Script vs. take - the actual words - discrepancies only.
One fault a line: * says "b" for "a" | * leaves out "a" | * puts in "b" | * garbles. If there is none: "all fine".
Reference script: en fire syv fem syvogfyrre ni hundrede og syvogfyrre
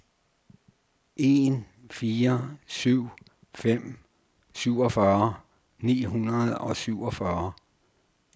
all fine